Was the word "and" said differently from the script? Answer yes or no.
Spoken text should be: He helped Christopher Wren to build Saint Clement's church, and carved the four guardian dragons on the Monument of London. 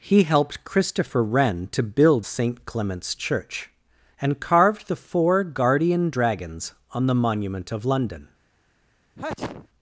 no